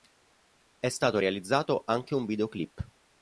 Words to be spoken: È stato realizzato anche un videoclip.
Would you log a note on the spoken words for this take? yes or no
no